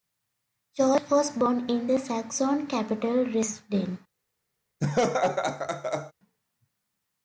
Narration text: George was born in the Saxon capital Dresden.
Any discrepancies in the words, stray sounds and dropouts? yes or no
yes